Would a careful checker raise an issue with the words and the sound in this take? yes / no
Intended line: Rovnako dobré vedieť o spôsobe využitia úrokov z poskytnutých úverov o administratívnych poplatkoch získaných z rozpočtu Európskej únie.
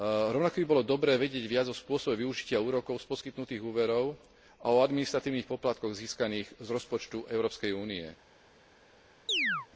yes